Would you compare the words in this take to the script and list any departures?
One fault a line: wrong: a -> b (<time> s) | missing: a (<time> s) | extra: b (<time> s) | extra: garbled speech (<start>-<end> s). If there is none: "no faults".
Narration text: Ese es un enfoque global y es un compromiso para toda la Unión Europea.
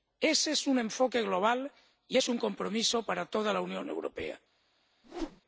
no faults